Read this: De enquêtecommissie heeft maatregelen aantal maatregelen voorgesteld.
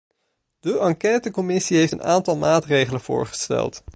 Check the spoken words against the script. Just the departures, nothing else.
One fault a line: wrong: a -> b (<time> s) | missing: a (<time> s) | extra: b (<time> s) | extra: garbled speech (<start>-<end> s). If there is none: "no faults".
wrong: maatregelen -> een (1.9 s)